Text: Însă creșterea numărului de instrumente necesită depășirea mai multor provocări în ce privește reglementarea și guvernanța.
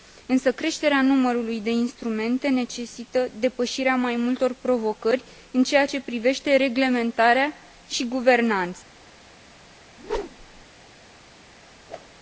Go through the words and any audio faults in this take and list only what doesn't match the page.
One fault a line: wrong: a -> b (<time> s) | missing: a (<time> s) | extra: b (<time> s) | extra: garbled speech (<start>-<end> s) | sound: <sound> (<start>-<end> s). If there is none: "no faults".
extra: ceea (5.6 s)
sound: whoosh (10.0-10.7 s)
sound: whoosh (11.9-12.1 s)